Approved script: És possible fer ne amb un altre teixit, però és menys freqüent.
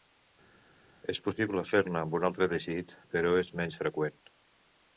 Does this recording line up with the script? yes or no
yes